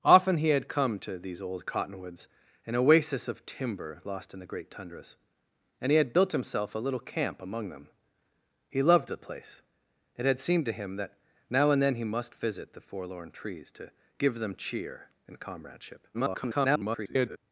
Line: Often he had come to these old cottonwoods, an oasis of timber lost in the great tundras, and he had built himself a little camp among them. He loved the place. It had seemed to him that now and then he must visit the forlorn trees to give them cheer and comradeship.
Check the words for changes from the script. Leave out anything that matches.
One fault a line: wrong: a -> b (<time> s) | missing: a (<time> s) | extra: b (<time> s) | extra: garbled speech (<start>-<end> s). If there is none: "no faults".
extra: garbled speech (16.1-17.4 s)